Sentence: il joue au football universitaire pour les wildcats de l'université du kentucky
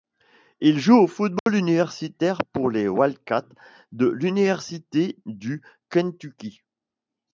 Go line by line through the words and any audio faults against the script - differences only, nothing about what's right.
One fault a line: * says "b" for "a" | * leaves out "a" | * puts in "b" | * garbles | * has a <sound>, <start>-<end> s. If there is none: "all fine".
* has a dropout, 1.4-1.5 s